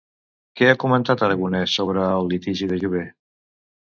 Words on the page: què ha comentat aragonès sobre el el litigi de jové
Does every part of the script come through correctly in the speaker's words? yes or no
no